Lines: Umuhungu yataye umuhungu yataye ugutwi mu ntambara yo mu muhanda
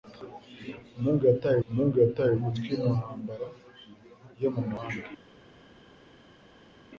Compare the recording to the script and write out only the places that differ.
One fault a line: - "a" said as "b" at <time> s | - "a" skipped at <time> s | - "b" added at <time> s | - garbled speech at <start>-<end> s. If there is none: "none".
none